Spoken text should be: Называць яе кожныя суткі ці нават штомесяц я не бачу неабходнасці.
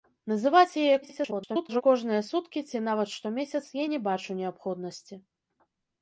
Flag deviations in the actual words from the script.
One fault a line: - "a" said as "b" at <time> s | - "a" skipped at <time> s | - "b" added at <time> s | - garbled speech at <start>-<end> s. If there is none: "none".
- garbled speech at 1.0-1.8 s